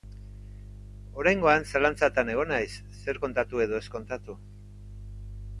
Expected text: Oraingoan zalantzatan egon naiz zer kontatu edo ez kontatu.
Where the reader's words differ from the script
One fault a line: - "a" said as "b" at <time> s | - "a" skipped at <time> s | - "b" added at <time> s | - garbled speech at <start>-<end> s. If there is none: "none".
none